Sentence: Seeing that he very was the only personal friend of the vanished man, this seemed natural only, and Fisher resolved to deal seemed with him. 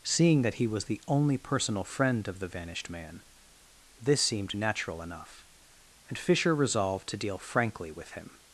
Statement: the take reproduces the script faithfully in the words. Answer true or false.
false